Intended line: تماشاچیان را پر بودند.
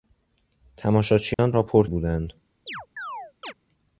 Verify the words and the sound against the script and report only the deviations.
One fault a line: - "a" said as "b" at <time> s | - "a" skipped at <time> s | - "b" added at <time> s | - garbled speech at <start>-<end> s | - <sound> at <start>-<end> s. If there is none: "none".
- dropout at 1.3-1.4 s
- chirp at 2.7-3.5 s